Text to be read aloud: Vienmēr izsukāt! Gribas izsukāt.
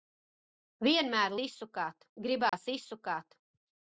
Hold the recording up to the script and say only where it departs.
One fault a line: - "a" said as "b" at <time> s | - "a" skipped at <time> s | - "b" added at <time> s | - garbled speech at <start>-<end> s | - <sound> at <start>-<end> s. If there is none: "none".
- dropout at 2.5-2.5 s